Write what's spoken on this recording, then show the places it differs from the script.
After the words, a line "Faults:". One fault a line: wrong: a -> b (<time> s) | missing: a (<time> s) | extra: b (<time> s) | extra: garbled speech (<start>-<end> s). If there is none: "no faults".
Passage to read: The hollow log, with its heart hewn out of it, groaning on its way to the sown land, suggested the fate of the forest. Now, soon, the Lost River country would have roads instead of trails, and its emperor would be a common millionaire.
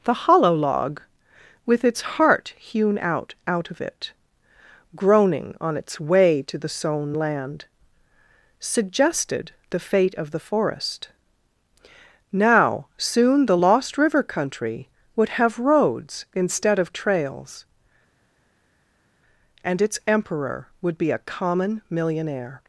The hollow log, with its heart hewn out out of it, groaning on its way to the sown land, suggested the fate of the forest. Now, soon, the Lost River country would have roads instead of trails, and its emperor would be a common millionaire.
Faults:
extra: out (3.5 s)